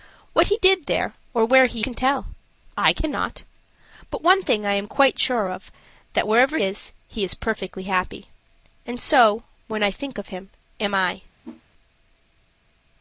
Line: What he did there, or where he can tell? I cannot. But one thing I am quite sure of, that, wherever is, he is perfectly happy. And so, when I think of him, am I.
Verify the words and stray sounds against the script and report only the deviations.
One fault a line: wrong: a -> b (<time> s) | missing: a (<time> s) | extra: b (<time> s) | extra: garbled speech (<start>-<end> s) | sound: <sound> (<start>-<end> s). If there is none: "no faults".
sound: whoosh (11.4-11.6 s)